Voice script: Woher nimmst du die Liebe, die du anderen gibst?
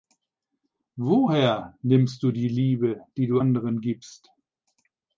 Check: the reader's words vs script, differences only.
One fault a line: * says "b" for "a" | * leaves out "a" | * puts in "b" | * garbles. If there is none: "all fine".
all fine